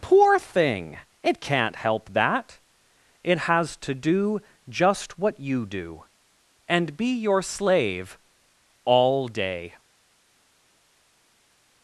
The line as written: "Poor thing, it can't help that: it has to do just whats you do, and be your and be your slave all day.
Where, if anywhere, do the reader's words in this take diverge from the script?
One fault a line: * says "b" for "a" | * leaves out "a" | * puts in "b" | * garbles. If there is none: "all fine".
* says "what" for "whats"
* leaves out "and be your"